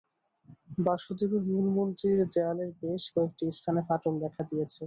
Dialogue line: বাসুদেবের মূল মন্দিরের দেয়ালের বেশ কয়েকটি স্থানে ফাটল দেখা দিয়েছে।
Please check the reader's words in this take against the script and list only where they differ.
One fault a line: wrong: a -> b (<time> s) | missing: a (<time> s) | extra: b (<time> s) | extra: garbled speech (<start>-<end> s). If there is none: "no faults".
no faults